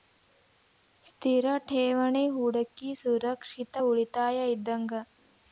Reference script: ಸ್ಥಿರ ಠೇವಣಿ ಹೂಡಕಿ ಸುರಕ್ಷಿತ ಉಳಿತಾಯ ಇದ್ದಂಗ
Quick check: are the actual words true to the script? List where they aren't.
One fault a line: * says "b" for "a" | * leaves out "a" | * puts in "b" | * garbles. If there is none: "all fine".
all fine